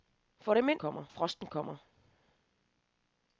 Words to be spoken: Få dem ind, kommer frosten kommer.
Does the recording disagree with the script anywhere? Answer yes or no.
no